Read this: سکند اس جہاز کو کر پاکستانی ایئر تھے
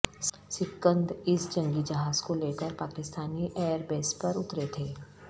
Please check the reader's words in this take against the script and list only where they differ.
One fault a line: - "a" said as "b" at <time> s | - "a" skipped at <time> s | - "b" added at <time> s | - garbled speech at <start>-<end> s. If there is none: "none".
- "جنگی" added at 1.5 s
- "لے" added at 2.4 s
- "بیس پر اترے" added at 3.9 s